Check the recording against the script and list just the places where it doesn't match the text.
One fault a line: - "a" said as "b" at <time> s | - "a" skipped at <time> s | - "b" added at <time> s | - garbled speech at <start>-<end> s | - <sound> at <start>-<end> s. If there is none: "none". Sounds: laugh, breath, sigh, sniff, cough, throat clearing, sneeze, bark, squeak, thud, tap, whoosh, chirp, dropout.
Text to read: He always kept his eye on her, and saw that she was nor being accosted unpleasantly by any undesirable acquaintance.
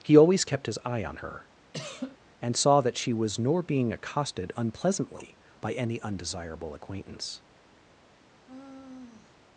- cough at 1.7-2.2 s
- sigh at 8.5-9.4 s